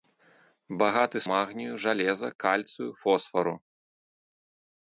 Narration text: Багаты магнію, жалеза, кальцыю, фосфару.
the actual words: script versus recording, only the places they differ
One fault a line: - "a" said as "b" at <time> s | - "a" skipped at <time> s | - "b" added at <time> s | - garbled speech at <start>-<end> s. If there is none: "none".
none